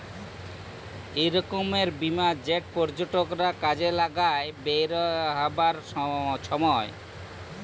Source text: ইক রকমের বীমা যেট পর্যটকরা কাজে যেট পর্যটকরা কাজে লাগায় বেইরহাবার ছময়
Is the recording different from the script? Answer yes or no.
yes